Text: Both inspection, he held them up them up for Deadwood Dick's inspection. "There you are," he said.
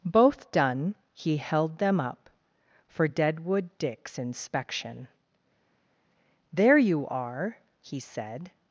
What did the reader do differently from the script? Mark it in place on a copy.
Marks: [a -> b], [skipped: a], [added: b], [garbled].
Both [inspection, -> done] he held them up [skipped: them up] for Deadwood Dick's inspection. "There you are," he said.